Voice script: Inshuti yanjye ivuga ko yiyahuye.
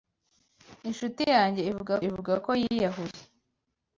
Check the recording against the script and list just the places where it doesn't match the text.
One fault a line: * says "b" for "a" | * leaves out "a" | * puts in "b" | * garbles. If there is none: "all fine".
* puts in "ivuga"